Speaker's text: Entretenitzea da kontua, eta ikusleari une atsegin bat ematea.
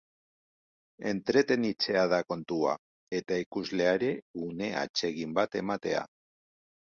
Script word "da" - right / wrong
right